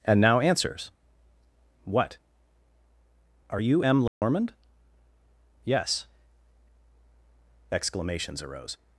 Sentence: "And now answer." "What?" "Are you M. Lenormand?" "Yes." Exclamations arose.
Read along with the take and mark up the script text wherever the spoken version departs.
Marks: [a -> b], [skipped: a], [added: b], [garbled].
"And now [answer." -> answers] "What?" "Are you M. Lenormand?" "Yes." Exclamations arose.